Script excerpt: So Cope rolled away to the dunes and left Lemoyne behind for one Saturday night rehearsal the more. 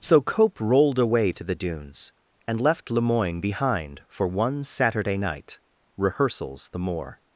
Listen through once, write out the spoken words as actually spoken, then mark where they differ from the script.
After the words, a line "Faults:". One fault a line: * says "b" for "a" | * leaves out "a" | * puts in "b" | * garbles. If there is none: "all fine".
So Cope rolled away to the dunes and left Lemoyne behind for one Saturday night rehearsals the more.
Faults:
* says "rehearsals" for "rehearsal"